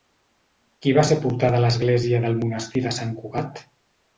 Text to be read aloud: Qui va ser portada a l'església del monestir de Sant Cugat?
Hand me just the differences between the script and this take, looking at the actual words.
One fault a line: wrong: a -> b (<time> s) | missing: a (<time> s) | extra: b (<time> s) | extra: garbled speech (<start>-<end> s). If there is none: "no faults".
no faults